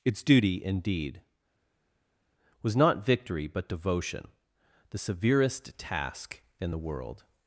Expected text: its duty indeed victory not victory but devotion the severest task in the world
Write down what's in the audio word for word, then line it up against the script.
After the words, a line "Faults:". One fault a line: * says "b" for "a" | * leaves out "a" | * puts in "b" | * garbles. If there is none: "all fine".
its duty indeed was not victory but devotion the severest task in the world
Faults:
* says "was" for "victory"